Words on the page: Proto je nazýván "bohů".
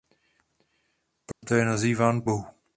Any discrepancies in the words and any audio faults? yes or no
yes